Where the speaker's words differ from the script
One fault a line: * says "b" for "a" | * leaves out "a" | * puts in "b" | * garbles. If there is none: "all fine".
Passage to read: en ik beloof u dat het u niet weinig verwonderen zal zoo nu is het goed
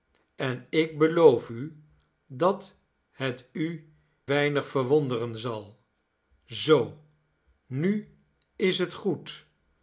* leaves out "niet"